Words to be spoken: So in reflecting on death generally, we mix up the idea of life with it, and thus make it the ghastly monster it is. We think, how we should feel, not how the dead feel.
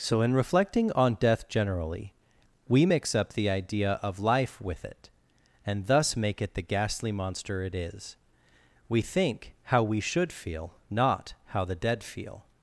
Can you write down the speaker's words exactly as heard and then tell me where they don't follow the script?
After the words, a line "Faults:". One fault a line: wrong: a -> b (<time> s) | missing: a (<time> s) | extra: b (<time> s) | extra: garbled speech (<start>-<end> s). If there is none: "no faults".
So in reflecting on death generally, we mix up the idea of life with it, and thus make it the ghastly monster it is. We think, how we should feel, not how the dead feel.
Faults:
no faults